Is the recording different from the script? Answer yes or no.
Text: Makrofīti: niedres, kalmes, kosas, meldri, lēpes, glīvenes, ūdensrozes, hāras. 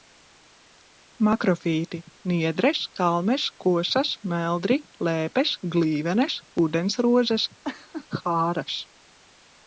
no